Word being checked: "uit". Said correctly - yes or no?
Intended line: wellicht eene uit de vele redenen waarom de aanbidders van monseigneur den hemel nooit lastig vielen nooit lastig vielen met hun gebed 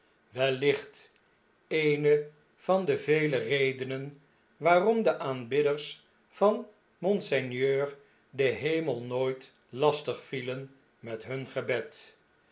no